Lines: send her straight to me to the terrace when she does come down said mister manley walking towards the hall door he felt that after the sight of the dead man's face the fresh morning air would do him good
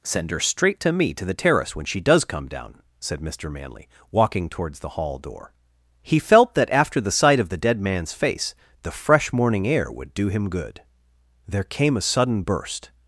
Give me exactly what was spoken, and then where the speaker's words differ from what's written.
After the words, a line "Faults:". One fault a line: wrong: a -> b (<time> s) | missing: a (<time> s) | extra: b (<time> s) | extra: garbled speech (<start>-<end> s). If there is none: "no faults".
send her straight to me to the terrace when she does come down said mister manley walking towards the hall door he felt that after the sight of the dead man's face the fresh morning air would do him good there came a sudden burst
Faults:
extra: there came a sudden burst (11.5 s)